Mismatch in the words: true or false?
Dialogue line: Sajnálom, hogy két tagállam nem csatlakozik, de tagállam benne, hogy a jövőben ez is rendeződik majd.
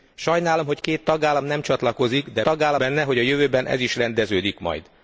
false